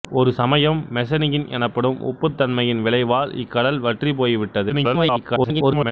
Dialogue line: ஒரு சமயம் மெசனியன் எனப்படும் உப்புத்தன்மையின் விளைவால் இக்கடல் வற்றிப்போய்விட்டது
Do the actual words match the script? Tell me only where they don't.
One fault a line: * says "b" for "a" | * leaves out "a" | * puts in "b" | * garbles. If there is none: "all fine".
* garbles